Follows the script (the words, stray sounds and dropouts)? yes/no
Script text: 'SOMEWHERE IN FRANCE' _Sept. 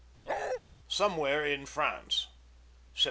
no